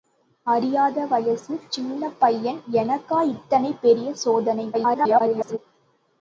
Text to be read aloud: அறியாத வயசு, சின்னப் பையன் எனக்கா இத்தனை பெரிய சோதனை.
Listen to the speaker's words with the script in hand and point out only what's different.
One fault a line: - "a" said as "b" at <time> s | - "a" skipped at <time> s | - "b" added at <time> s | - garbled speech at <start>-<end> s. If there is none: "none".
- garbled speech at 4.7-5.6 s